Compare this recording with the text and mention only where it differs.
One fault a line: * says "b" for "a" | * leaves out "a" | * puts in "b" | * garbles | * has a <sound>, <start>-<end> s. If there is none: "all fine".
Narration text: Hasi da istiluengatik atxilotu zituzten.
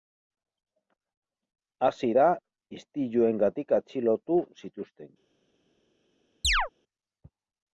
* has a chirp, 6.4-6.7 s